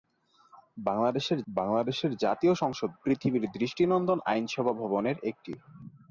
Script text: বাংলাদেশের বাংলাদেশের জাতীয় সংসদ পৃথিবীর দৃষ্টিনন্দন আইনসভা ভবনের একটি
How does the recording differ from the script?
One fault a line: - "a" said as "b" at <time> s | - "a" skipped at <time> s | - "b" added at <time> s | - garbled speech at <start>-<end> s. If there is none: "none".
none